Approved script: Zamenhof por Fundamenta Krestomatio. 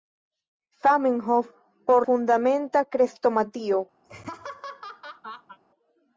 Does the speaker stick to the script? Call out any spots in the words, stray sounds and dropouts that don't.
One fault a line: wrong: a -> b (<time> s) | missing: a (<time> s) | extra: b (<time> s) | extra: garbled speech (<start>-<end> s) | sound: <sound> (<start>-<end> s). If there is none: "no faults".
sound: laugh (4.0-5.6 s)